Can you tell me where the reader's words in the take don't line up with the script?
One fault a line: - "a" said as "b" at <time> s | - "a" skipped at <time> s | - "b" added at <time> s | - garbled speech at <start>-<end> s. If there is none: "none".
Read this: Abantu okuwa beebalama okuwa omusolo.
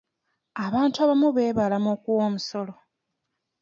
- "okuwa" said as "abamu" at 1.0 s